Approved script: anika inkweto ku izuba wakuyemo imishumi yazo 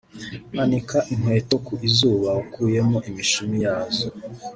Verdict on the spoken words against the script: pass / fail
pass